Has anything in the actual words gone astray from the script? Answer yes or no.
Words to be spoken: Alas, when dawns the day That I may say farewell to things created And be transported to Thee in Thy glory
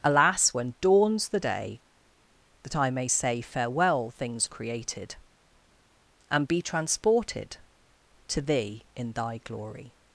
yes